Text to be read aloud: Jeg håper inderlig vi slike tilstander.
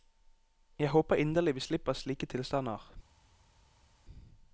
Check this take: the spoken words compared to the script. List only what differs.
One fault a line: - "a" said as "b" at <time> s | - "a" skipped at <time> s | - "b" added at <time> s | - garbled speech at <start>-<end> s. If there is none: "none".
- "slipper" added at 1.6 s